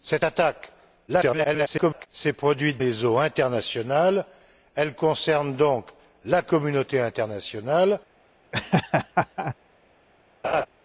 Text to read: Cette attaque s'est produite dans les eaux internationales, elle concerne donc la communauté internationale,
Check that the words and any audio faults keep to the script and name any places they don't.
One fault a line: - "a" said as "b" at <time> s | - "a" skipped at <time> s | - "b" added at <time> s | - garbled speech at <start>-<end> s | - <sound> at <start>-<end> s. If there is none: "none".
- garbled speech at 1.1-2.1 s
- "dans" skipped at 2.8 s
- laugh at 8.5-9.5 s
- laugh at 10.4-10.7 s